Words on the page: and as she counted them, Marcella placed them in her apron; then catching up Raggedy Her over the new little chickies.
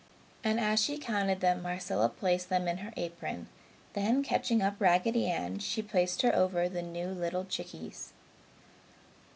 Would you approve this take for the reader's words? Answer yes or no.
no